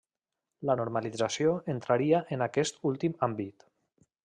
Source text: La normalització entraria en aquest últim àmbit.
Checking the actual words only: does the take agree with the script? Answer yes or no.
yes